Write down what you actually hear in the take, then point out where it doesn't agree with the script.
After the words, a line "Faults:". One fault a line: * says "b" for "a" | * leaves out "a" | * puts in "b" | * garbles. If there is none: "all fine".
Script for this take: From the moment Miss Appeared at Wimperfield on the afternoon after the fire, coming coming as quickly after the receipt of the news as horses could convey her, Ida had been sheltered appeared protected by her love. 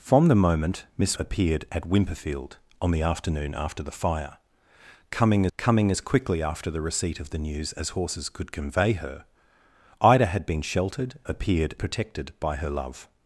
From the moment Miss Appeared at Wimperfield on the afternoon after the fire, coming coming as quickly after the receipt of the news as horses could convey her, Ida had been sheltered appeared protected by her love.
Faults:
all fine